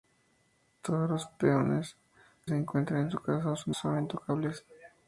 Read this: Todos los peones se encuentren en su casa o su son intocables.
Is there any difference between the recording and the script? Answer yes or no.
no